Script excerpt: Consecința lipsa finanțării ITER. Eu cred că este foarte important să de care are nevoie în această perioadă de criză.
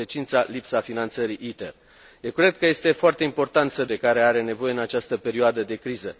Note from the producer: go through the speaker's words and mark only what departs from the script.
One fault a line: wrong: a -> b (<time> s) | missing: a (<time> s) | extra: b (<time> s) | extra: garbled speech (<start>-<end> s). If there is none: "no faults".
no faults